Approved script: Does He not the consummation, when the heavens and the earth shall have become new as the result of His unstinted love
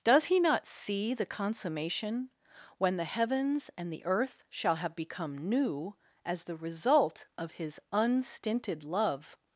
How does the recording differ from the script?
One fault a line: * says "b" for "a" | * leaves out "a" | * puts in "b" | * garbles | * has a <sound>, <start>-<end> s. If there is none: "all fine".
* puts in "see"